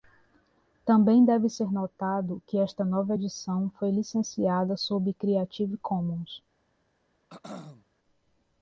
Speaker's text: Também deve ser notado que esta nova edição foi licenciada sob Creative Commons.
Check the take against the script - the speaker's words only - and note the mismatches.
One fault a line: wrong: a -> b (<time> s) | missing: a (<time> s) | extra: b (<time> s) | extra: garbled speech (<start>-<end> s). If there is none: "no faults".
no faults